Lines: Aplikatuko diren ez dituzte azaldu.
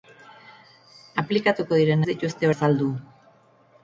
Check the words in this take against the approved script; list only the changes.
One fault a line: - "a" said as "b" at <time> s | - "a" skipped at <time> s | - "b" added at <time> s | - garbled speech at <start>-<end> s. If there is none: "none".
none